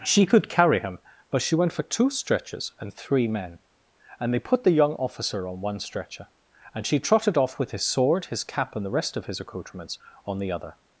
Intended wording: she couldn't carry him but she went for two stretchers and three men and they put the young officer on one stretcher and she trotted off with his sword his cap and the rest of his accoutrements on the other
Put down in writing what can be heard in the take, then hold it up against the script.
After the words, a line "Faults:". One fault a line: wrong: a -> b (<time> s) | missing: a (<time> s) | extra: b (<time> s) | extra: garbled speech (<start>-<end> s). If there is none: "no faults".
she could carry him but she went for two stretchers and three men and they put the young officer on one stretcher and she trotted off with his sword his cap and the rest of his accoutrements on the other
Faults:
wrong: couldn't -> could (0.2 s)